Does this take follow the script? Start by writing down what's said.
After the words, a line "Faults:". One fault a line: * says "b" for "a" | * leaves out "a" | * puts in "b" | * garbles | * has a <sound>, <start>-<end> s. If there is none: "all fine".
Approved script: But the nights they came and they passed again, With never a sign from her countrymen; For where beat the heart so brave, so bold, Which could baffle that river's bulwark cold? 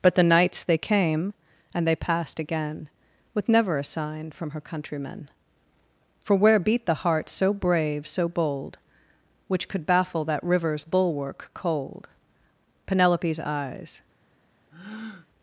But the nights they came and they passed again, With never a sign from her countrymen; For where beat the heart so brave, so bold, Which could baffle that river's bulwark cold? Penelope's eyes
Faults:
* puts in "Penelope's eyes"
* has a breath, 14.7-15.3 s